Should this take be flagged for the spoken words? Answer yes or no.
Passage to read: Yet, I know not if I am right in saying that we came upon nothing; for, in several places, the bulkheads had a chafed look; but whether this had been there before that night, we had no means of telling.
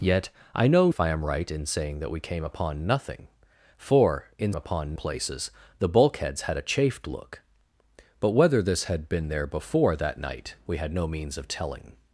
yes